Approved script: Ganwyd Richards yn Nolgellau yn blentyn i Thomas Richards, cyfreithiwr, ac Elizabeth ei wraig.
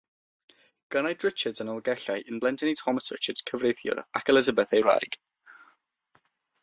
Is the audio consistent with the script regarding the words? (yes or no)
yes